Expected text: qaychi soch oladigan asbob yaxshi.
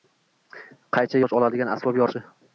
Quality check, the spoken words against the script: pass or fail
pass